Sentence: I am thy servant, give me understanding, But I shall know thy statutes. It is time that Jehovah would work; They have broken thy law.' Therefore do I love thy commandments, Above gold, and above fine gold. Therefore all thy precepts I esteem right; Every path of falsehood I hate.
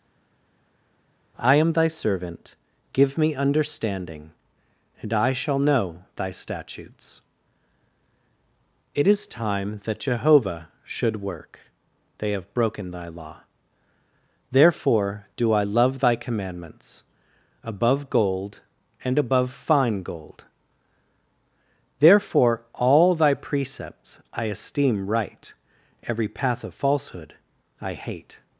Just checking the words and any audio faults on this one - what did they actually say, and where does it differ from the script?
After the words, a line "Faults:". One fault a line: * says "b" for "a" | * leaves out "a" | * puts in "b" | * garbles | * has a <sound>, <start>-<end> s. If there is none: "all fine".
I am thy servant, give me understanding, And I shall know thy statutes. It is time that Jehovah should work; They have broken thy law.' Therefore do I love thy commandments, Above gold, and above fine gold. Therefore all thy precepts I esteem right; Every path of falsehood I hate.
Faults:
* says "And" for "But"
* says "should" for "would"